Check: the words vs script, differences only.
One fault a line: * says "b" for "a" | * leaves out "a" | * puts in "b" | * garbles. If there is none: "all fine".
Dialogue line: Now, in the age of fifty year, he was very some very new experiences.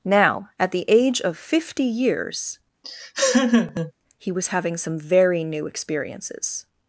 * says "at" for "in"
* says "years" for "year"
* says "having" for "very"